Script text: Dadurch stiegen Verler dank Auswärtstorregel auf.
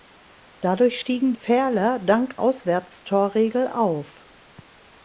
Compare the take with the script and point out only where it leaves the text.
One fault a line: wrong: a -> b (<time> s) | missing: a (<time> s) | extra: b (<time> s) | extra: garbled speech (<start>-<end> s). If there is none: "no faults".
no faults